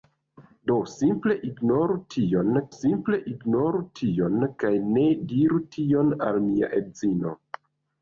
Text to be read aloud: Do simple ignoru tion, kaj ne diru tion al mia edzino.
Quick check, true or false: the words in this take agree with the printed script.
false